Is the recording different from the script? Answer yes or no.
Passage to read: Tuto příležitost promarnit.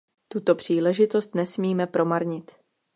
yes